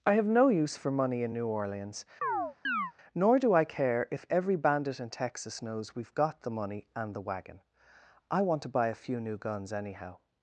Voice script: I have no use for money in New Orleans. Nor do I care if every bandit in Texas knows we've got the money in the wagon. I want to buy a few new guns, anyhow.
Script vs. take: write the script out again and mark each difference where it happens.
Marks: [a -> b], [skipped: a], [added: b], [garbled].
I have no use for money in New Orleans. Nor do I care if every bandit in Texas knows we've got the money [in -> and] the wagon. I want to buy a few new guns, anyhow.